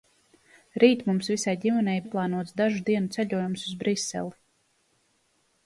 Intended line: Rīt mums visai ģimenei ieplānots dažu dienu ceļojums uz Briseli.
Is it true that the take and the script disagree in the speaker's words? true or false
false